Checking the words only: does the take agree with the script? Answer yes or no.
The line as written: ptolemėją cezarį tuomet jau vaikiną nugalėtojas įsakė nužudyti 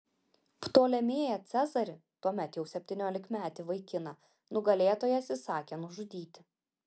no